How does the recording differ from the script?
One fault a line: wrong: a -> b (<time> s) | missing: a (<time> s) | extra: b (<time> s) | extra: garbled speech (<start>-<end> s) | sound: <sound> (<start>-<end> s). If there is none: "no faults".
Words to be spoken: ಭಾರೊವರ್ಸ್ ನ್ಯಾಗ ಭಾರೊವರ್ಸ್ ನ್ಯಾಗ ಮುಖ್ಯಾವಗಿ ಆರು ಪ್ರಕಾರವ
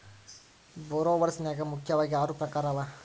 missing: ಭಾರೊವರ್ಸ್ ನ್ಯಾಗ (1.6 s)